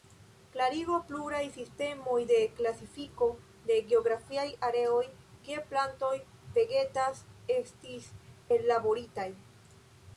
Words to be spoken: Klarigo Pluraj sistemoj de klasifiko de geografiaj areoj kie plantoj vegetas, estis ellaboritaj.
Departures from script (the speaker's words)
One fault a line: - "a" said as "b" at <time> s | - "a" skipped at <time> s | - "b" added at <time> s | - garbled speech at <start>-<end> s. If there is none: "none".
none